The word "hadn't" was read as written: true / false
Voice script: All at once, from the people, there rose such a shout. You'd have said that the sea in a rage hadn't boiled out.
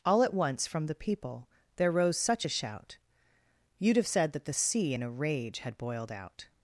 false